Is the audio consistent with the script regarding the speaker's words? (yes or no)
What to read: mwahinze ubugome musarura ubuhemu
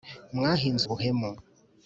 no